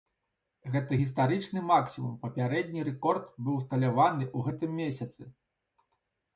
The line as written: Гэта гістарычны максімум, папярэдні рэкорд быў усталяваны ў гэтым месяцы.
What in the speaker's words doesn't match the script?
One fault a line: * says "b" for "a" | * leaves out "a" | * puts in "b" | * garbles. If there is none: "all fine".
all fine